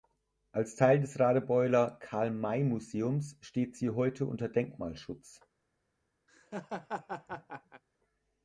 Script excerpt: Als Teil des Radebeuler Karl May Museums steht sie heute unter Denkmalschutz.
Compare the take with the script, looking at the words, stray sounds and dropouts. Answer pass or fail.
fail